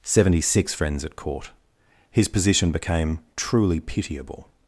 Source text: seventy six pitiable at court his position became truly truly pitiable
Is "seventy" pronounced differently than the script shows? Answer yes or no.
no